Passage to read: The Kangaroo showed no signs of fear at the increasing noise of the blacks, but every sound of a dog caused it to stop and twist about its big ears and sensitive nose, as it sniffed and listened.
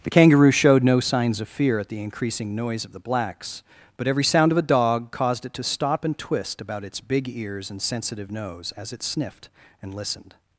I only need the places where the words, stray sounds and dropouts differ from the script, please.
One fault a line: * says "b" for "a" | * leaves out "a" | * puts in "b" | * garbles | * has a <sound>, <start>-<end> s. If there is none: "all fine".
all fine